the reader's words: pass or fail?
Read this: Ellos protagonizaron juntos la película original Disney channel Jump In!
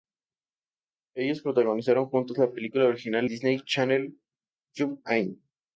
pass